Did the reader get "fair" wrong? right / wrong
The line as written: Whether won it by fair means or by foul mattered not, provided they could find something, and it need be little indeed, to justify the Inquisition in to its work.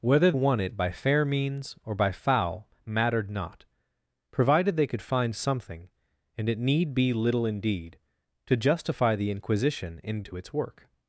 right